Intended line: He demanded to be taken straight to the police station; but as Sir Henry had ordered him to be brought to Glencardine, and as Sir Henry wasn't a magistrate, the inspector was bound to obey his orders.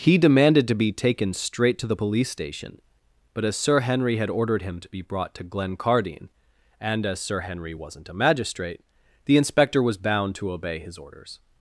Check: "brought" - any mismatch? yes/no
no